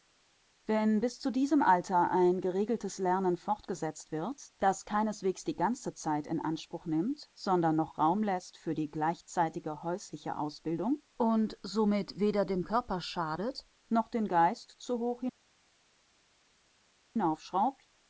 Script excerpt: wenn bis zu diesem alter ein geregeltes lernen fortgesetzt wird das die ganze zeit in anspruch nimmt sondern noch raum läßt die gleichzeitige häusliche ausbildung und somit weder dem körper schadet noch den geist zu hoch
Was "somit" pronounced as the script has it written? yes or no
yes